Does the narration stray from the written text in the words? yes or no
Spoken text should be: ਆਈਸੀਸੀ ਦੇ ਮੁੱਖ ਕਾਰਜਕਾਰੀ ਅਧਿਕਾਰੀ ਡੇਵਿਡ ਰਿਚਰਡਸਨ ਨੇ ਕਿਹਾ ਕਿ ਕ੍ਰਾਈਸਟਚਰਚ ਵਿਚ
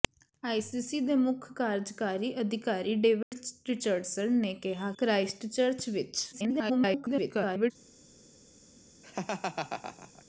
yes